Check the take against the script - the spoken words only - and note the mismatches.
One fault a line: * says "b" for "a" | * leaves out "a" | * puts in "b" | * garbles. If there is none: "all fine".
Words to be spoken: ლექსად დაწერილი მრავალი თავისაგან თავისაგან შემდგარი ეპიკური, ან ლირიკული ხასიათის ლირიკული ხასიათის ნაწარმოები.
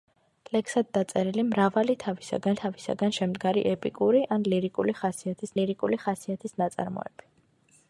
all fine